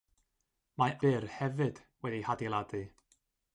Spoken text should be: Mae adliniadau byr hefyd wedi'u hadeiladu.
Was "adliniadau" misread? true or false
true